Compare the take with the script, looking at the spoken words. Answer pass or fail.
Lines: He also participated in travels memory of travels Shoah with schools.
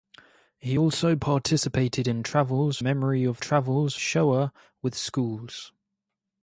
pass